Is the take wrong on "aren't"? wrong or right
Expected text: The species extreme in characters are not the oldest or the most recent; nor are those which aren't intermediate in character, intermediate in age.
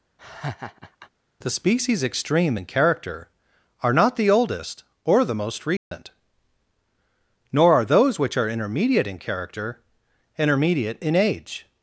wrong